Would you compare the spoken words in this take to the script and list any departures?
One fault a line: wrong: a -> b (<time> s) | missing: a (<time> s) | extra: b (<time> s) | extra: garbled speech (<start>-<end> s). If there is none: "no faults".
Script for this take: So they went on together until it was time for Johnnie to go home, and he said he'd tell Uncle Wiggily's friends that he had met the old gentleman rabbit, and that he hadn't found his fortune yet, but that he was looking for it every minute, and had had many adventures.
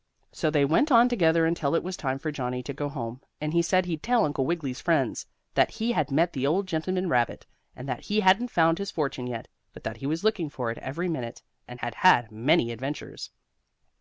no faults